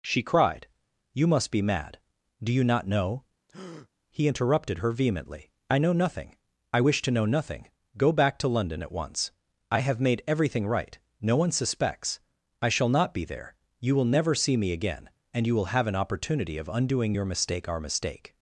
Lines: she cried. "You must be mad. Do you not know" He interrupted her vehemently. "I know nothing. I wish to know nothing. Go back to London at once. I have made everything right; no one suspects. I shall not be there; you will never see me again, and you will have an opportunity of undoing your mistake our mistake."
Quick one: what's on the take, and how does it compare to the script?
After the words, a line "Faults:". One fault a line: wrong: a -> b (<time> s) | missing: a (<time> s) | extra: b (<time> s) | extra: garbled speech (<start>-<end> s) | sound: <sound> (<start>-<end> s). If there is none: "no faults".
she cried. "You must be mad. Do you not know" He interrupted her vehemently. "I know nothing. I wish to know nothing. Go back to London at once. I have made everything right; no one suspects. I shall not be there; you will never see me again, and you will have an opportunity of undoing your mistake our mistake."
Faults:
sound: breath (3.5-3.9 s)